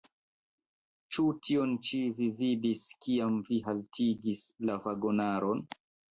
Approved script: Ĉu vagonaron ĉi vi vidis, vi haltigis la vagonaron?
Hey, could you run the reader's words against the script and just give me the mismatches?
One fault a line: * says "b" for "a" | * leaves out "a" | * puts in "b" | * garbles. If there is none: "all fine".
* says "tion" for "vagonaron"
* puts in "kiam"